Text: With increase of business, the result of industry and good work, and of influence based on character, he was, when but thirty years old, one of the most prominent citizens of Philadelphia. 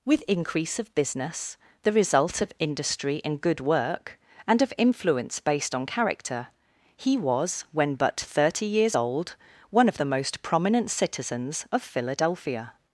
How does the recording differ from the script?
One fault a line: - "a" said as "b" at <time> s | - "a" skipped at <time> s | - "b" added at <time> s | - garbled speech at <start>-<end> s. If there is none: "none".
none